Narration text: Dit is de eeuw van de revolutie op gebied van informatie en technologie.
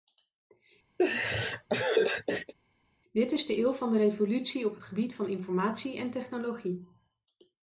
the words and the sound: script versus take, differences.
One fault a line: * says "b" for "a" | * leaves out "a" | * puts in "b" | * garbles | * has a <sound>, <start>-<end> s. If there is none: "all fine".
* has a laugh, 1.0-2.5 s
* puts in "het"